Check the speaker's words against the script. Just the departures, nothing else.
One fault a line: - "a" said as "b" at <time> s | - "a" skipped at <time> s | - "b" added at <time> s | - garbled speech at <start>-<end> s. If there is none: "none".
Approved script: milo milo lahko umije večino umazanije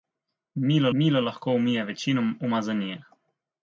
none